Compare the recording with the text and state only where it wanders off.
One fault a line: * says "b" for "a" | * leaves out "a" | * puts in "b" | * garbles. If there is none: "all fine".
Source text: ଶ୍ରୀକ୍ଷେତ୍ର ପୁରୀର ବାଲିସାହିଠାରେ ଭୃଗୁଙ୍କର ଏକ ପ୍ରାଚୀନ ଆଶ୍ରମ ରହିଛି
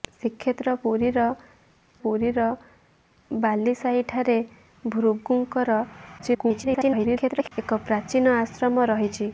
* puts in "ପୁରୀର"
* garbles